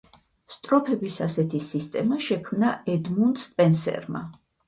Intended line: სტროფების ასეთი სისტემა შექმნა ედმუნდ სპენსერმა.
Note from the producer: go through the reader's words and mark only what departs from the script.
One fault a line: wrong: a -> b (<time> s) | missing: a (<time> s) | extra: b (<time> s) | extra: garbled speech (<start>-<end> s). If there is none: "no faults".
no faults